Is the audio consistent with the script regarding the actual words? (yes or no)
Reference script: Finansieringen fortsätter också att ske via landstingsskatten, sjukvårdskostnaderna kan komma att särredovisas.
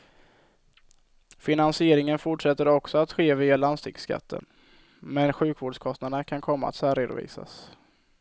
no